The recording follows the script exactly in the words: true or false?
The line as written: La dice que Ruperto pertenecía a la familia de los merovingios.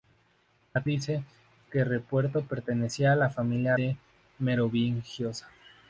true